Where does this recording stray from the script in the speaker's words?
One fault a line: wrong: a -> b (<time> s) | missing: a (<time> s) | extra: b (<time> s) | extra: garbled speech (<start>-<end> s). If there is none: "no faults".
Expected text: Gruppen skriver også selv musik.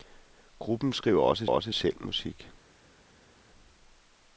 extra: også (1.5 s)